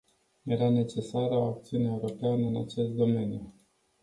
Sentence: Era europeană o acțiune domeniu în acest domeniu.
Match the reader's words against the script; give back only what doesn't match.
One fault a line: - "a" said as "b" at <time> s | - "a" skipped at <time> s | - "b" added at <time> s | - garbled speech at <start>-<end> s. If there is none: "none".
- "europeană" said as "necesară" at 0.7 s
- "domeniu" said as "europeană" at 1.9 s